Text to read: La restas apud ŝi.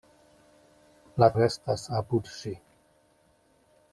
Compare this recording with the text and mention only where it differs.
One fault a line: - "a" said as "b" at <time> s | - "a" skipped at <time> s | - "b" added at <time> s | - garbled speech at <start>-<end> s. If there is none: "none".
none